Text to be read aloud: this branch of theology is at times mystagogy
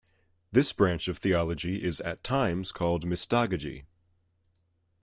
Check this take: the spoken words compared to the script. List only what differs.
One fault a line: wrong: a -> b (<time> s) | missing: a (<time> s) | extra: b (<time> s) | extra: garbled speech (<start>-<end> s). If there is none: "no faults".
extra: called (2.7 s)